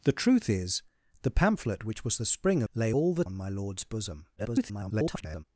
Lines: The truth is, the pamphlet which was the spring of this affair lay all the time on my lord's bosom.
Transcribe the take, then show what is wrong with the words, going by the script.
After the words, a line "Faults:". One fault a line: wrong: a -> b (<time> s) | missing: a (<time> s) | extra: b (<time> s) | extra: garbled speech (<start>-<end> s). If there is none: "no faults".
The truth is, the pamphlet which was the spring lay all the on my lord's bosom. [garbled]
Faults:
missing: of this affair (2.6 s)
missing: time (3.3 s)
extra: garbled speech (4.4-5.4 s)